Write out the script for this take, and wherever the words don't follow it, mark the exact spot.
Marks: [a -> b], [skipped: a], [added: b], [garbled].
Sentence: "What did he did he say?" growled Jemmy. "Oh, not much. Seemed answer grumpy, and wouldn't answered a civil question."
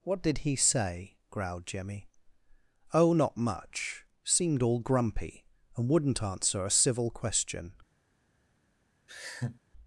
"What did he [skipped: did he] say?" growled Jemmy. "Oh, not much. Seemed [answer -> all] grumpy, and wouldn't [answered -> answer] a civil question."